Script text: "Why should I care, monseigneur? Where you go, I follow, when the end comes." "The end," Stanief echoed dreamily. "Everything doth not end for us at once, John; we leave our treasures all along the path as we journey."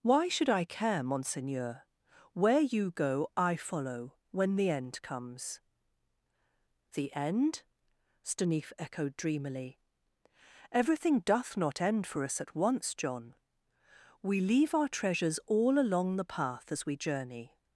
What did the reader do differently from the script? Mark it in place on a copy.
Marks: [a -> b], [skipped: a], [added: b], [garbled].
"Why should I care, monseigneur? Where you go, I follow, when the end comes." "The end," Stanief echoed dreamily. "Everything doth not end for us at once, John; we leave our treasures all along the path as we journey."